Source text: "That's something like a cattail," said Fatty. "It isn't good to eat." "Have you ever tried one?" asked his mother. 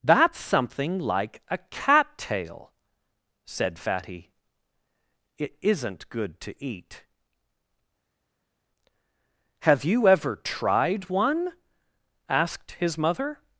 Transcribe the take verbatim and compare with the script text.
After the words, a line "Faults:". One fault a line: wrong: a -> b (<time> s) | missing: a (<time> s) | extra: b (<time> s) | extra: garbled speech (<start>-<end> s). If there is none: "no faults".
"That's something like a cattail," said Fatty. "It isn't good to eat." "Have you ever tried one?" asked his mother.
Faults:
no faults